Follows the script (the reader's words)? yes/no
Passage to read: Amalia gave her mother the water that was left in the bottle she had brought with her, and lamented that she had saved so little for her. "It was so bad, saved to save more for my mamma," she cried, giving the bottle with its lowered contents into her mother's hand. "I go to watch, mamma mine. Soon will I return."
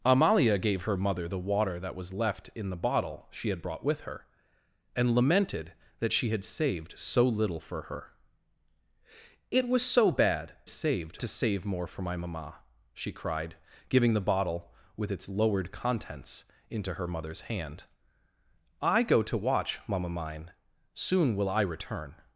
yes